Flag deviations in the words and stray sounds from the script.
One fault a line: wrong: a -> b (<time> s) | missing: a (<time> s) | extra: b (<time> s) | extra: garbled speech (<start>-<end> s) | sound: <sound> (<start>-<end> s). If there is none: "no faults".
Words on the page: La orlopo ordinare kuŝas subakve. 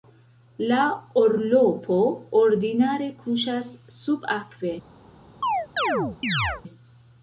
sound: chirp (5.4-6.6 s)